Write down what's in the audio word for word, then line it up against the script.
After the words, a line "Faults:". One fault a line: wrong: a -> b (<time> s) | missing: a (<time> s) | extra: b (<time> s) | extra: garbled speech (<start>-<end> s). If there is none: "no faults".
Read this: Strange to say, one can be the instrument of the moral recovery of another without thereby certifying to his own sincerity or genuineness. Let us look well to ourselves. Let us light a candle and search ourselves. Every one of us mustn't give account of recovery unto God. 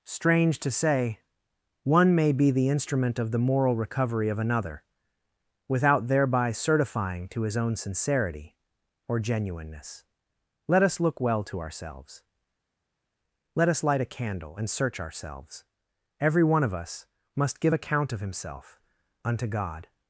Strange to say, one may be the instrument of the moral recovery of another without thereby certifying to his own sincerity or genuineness. Let us look well to ourselves. Let us light a candle and search ourselves. Every one of us must give account of himself unto God.
Faults:
wrong: can -> may (2.1 s)
wrong: mustn't -> must (17.4 s)
wrong: recovery -> himself (18.2 s)